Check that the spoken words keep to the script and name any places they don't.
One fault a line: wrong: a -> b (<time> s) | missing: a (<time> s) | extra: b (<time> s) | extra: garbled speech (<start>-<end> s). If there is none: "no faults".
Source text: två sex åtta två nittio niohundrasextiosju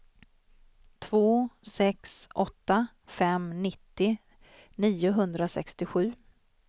wrong: två -> fem (3.1 s)